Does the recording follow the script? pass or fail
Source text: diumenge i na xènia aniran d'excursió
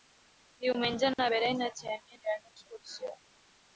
fail